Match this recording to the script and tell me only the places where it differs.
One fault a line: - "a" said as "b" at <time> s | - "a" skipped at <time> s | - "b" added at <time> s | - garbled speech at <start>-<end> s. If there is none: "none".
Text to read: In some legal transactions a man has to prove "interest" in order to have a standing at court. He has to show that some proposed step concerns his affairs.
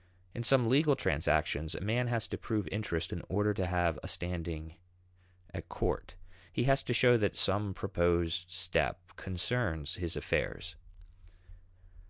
none